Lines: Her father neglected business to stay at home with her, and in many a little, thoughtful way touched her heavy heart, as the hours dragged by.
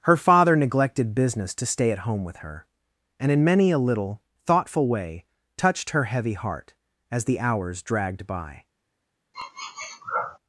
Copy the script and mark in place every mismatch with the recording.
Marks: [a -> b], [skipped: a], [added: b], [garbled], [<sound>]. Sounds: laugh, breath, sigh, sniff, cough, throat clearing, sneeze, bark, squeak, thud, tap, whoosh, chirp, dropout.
Her father neglected business to stay at home with her, and in many a little, thoughtful way touched her heavy heart, as the hours dragged by. [sniff]